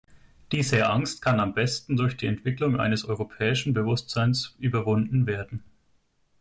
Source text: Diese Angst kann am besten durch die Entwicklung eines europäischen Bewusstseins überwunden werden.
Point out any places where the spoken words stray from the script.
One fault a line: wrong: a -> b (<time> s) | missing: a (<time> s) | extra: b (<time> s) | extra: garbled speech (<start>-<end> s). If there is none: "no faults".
no faults